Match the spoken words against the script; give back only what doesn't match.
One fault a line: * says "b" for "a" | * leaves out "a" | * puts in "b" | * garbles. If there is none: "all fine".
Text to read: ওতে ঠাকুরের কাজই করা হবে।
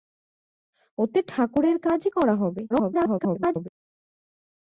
* garbles